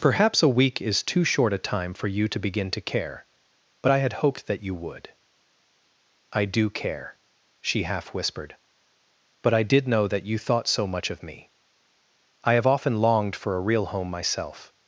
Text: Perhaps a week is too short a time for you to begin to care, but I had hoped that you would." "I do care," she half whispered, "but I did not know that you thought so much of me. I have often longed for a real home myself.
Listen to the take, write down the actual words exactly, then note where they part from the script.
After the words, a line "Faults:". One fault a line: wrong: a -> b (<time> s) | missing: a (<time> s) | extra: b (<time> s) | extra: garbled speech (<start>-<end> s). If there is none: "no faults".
Perhaps a week is too short a time for you to begin to care, but I had hoped that you would." "I do care," she half whispered, "but I did know that you thought so much of me. I have often longed for a real home myself.
Faults:
missing: not (9.9 s)